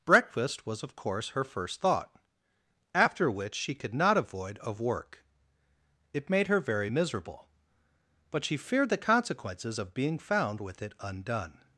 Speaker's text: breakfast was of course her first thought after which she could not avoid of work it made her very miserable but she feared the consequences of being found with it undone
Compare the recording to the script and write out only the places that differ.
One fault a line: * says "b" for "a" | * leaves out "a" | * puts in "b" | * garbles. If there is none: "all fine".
all fine